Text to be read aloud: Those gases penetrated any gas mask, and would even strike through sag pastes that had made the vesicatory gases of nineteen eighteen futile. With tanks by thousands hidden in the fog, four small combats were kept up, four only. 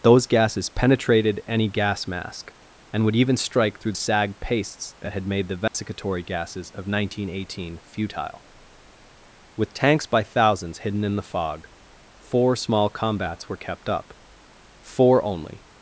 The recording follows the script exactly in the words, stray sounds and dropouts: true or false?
false